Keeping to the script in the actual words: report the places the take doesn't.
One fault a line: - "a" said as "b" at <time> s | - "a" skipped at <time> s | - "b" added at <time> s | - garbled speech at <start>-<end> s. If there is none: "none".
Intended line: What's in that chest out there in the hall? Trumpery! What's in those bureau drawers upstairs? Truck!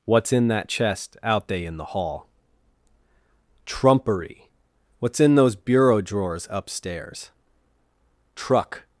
- "there" said as "they" at 1.5 s